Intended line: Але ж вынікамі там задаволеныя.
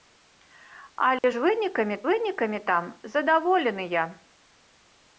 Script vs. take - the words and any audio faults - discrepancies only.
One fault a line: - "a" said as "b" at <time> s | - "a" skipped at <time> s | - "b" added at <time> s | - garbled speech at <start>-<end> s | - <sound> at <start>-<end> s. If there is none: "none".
- dropout at 1.2-1.2 s
- "вынікамі" added at 2.1 s